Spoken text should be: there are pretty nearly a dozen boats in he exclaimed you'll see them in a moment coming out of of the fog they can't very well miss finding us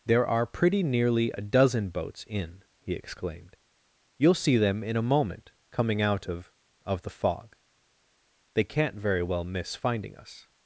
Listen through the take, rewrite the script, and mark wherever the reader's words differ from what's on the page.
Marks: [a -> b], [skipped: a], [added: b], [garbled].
there are pretty nearly a dozen boats in he exclaimed you'll see them in a moment coming out of of the fog they can't very well miss finding us